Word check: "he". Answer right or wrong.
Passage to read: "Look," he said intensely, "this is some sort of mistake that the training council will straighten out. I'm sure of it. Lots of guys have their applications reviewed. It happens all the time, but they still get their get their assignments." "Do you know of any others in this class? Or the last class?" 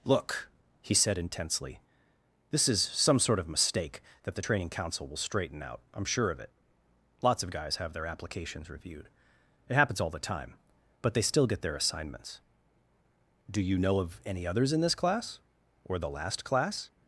right